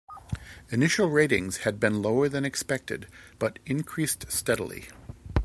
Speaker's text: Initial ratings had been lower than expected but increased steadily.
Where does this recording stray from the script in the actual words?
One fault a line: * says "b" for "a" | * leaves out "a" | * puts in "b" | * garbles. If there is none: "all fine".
all fine